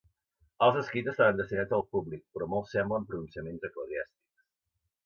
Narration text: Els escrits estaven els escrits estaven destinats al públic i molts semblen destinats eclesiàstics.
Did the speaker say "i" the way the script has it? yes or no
no